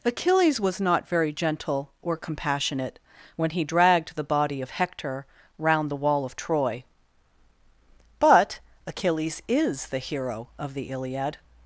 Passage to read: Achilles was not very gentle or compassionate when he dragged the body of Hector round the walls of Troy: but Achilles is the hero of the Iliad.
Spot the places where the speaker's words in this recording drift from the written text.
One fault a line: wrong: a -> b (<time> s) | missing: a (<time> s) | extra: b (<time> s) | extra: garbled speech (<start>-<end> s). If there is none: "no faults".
wrong: walls -> wall (6.0 s)